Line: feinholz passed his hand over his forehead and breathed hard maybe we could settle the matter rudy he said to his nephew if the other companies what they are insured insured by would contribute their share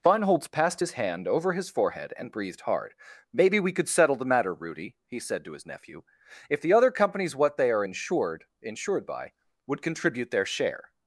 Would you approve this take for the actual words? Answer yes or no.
yes